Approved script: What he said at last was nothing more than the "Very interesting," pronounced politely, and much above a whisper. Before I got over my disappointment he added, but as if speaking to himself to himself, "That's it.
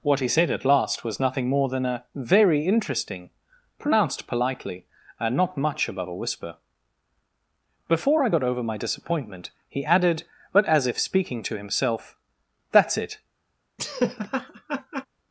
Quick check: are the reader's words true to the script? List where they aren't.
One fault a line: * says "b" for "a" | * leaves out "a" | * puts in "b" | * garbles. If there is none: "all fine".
* says "a" for "the"
* puts in "not"
* leaves out "to himself"